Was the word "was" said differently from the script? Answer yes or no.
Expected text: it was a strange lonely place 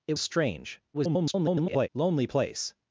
yes